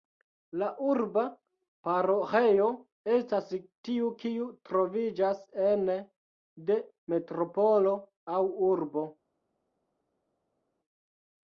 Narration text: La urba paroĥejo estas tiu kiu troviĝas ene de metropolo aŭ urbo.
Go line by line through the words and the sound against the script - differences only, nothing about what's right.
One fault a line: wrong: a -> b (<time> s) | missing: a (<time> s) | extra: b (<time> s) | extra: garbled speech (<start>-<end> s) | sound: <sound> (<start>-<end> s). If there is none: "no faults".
no faults